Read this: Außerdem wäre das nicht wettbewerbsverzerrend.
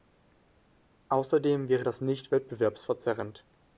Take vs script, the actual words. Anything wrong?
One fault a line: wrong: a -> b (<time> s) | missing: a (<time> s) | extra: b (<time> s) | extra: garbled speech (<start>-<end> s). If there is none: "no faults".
no faults